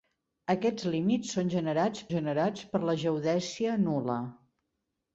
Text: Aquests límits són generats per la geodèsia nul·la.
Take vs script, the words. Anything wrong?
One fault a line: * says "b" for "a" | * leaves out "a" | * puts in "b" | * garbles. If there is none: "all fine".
* puts in "generats"